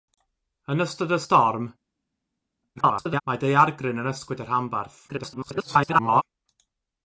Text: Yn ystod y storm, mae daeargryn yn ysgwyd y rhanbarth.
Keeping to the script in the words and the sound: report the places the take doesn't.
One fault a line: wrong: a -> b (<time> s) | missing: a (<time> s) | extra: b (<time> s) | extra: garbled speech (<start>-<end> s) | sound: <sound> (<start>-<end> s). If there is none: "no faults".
extra: garbled speech (2.8-3.2 s)
extra: garbled speech (5.1-6.2 s)